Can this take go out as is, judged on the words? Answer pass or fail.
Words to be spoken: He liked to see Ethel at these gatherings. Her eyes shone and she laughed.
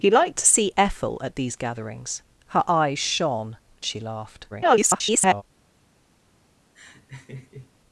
fail